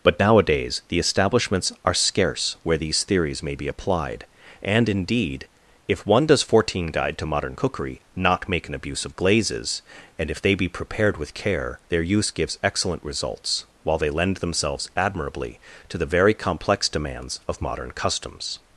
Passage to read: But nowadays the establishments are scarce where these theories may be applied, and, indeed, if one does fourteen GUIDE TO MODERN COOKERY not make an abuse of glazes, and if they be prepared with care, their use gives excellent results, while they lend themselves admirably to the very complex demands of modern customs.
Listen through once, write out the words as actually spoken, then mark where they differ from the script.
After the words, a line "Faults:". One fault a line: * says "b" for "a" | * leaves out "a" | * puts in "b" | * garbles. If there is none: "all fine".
But nowadays the establishments are scarce where these theories may be applied, and, indeed, if one does fourteen GUIDE TO MODERN COOKERY not make an abuse of glazes, and if they be prepared with care, their use gives excellent results, while they lend themselves admirably to the very complex demands of modern customs.
Faults:
all fine